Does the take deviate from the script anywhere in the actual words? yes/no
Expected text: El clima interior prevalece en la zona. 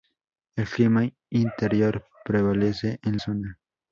yes